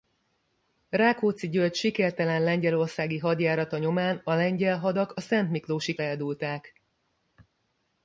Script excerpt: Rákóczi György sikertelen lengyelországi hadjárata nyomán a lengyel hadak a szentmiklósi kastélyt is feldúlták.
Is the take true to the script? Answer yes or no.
no